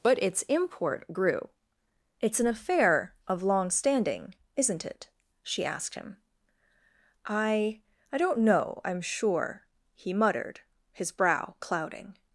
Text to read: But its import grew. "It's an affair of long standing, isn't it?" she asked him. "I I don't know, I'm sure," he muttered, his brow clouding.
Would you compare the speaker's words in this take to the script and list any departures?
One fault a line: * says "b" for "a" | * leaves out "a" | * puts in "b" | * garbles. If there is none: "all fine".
all fine